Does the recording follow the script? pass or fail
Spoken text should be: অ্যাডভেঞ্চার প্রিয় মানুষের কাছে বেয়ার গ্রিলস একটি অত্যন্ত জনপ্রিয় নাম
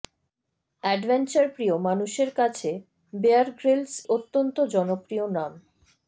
fail